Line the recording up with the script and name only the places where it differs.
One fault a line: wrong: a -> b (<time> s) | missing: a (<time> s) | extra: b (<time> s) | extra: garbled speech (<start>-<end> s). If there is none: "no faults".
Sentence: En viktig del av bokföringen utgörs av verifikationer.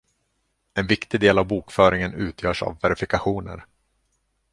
no faults